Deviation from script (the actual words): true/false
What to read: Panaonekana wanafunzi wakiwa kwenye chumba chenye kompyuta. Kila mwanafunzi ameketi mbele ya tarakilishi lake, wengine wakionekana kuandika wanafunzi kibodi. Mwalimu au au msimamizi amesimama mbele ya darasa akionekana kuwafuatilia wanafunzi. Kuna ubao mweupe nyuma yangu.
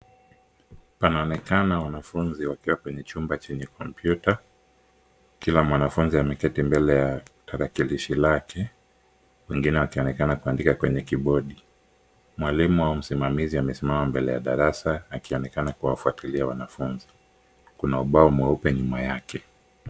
true